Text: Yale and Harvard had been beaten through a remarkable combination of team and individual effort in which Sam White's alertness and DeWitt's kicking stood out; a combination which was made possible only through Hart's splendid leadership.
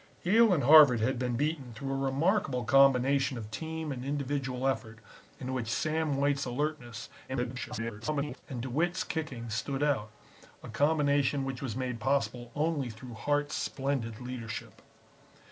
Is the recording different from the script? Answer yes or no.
yes